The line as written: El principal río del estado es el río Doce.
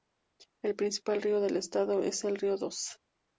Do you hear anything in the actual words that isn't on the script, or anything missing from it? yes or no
no